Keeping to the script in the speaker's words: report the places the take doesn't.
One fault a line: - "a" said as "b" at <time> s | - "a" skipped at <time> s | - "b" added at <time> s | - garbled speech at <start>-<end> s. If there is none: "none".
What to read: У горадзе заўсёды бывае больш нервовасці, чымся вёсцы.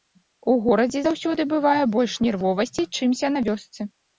- "на" added at 3.3 s